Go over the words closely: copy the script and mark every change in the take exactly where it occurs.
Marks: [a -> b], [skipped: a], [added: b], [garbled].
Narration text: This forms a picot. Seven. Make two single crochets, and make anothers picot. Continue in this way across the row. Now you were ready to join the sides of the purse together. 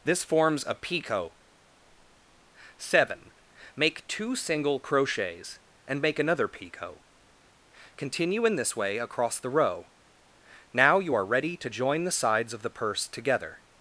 This forms a picot. Seven. Make two single crochets, and make [anothers -> another] picot. Continue in this way across the row. Now you [were -> are] ready to join the sides of the purse together.